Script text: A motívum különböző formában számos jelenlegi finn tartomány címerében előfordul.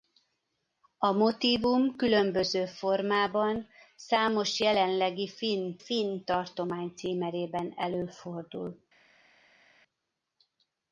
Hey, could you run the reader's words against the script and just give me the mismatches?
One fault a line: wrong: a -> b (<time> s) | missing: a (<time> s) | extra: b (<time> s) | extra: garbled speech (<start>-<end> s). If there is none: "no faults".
extra: finn (5.8 s)